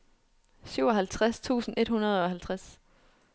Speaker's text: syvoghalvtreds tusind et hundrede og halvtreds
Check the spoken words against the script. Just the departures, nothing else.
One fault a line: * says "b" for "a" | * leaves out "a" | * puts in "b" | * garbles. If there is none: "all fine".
all fine